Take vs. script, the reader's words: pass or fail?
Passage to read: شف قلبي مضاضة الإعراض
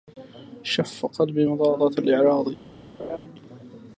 pass